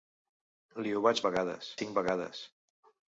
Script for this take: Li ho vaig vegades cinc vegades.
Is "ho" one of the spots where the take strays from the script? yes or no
no